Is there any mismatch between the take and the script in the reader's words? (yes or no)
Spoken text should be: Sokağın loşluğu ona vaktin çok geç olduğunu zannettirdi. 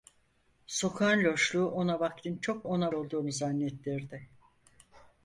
yes